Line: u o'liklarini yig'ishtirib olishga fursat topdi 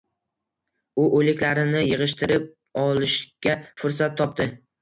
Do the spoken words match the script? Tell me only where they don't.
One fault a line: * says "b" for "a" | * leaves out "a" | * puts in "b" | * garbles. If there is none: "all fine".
all fine